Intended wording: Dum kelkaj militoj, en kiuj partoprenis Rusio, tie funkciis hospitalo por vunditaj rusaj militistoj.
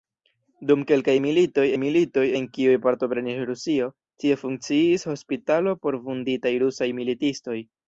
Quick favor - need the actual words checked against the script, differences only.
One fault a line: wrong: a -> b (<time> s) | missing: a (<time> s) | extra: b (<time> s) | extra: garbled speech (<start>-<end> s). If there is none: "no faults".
extra: militoj (1.8 s)